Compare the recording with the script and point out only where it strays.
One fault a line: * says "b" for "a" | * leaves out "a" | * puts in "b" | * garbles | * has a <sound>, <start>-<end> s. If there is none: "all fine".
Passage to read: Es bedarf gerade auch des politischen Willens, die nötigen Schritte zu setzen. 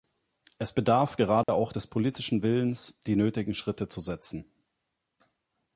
* has a dropout, 1.4-1.5 s